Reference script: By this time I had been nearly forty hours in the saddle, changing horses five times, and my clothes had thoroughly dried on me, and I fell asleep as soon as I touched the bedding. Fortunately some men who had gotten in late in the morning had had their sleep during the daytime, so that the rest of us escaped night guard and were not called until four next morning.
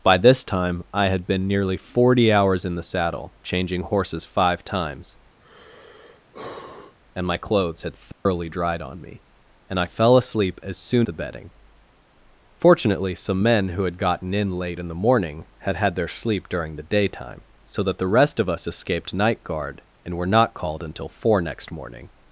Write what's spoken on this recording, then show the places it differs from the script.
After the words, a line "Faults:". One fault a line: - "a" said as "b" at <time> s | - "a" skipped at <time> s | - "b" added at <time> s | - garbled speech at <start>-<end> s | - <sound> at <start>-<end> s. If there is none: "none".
By this time I had been nearly forty hours in the saddle, changing horses five times, and my clothes had thoroughly dried on me, and I fell asleep as soon the bedding. Fortunately some men who had gotten in late in the morning had had their sleep during the daytime, so that the rest of us escaped night guard and were not called until four next morning.
Faults:
- sigh at 5.4-7.0 s
- dropout at 8.1-8.3 s
- "as I touched" skipped at 11.1 s